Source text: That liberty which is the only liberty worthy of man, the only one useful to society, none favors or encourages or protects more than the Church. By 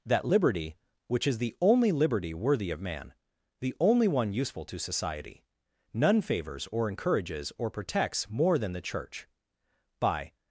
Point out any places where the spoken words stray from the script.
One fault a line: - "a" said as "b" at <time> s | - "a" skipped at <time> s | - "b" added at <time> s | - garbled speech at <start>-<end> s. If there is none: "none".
none